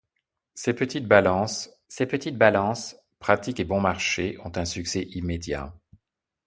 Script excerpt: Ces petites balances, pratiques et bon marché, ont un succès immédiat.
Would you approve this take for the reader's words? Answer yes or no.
no